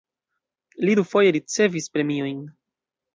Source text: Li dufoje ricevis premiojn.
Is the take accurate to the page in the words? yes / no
yes